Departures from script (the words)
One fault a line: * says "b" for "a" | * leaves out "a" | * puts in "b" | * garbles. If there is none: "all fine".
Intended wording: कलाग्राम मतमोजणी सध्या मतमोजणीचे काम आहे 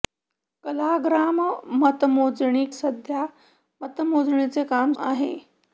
all fine